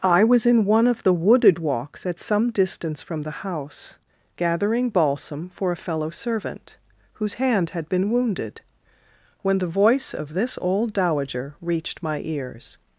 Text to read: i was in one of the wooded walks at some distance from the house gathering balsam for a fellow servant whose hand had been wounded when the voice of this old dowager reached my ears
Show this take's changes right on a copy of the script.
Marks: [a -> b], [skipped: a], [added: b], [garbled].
i was in one of the wooded walks at some distance from the house gathering balsam for a fellow servant whose hand had been wounded when the voice of this old dowager reached my ears